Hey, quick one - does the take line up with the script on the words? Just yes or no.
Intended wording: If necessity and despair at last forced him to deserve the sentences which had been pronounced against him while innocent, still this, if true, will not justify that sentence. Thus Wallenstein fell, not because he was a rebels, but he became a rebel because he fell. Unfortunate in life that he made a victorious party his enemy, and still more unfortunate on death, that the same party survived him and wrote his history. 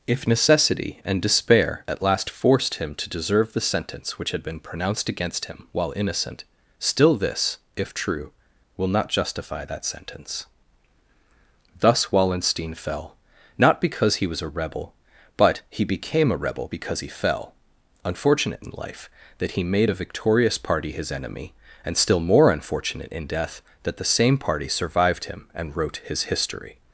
no